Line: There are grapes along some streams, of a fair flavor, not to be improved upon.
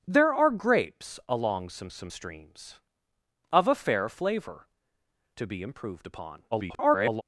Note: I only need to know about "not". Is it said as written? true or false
false